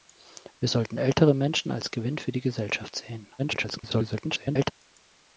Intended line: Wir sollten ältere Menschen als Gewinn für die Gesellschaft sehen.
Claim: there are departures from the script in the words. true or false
true